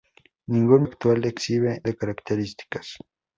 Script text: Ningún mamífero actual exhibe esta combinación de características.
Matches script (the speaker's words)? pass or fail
fail